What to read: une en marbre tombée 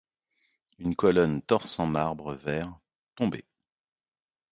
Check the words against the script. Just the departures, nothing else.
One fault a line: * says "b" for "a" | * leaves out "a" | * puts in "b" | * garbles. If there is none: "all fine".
* puts in "colonne torse"
* puts in "vert"